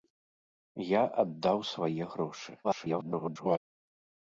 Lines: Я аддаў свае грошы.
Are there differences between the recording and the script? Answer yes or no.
yes